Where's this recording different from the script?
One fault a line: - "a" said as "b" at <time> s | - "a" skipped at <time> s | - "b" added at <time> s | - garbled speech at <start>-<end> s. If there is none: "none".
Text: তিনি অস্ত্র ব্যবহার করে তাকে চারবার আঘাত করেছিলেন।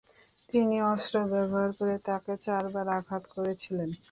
none